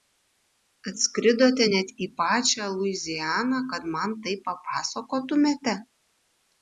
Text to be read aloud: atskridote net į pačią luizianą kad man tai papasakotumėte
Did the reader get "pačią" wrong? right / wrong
right